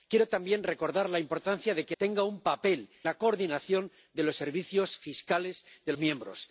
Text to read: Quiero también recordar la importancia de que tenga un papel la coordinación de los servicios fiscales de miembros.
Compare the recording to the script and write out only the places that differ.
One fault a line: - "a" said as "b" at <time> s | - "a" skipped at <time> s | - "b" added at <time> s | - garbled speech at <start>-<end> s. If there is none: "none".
none